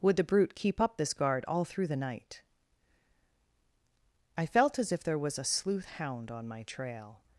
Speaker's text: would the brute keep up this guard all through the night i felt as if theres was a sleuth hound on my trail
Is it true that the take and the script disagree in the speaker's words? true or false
true